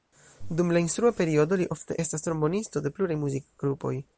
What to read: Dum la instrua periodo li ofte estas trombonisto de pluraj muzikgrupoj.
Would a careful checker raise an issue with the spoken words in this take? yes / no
no